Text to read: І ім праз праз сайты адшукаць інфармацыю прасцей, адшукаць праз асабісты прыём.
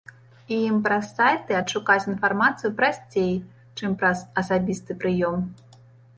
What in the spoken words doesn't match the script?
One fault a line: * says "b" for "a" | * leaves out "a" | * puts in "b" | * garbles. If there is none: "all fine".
* leaves out "праз"
* says "чым" for "адшукаць"